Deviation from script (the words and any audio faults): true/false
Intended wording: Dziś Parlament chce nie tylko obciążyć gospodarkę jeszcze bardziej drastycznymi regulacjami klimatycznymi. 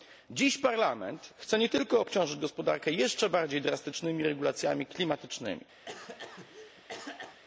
true